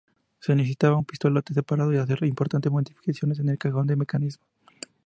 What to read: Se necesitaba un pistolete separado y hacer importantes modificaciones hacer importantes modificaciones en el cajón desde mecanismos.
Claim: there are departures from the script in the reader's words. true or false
true